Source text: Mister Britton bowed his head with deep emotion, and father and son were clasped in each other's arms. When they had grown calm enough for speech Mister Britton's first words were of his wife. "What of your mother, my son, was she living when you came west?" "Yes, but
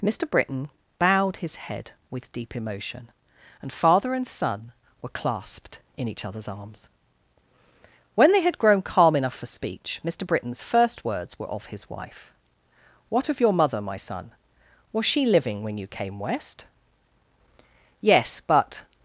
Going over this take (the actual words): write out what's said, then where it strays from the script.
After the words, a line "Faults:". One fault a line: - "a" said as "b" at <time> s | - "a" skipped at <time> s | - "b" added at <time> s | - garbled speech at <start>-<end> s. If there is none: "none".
Mister Britton bowed his head with deep emotion, and father and son were clasped in each other's arms. When they had grown calm enough for speech Mister Britton's first words were of his wife. "What of your mother, my son, was she living when you came west?" "Yes, but
Faults:
none